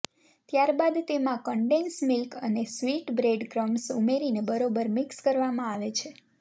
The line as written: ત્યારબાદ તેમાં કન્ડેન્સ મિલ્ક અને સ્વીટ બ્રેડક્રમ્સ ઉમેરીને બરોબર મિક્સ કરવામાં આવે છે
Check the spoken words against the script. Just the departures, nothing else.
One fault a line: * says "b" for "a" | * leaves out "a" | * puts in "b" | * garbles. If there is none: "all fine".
all fine